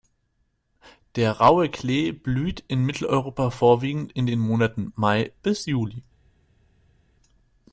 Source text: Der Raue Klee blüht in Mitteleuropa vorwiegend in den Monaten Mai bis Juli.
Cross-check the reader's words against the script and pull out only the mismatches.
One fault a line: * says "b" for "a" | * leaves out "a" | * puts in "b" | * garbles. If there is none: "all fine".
all fine